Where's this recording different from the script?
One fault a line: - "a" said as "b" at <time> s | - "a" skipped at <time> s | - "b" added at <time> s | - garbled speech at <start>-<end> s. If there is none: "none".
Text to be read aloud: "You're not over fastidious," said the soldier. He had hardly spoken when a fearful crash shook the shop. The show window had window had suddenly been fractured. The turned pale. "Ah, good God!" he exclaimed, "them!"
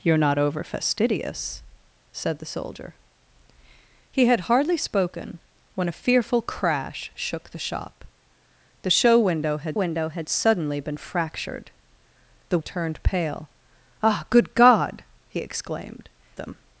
none